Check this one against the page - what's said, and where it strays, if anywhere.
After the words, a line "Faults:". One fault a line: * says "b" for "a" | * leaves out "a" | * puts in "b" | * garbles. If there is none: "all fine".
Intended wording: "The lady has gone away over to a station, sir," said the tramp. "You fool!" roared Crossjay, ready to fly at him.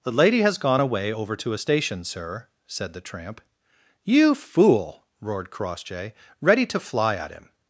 "The lady has gone away over to a station, sir," said the tramp. "You fool!" roared Crossjay, ready to fly at him.
Faults:
all fine